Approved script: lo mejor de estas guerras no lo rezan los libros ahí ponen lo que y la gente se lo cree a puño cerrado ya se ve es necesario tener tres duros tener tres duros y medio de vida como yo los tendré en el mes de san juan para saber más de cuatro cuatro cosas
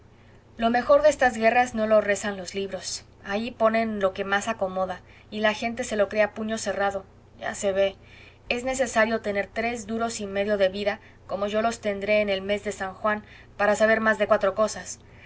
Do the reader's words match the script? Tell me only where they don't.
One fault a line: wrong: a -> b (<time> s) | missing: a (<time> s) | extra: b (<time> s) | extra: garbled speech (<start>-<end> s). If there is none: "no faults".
extra: más acomoda (4.2 s)
missing: tener tres duros (10.2 s)
missing: cuatro (14.5 s)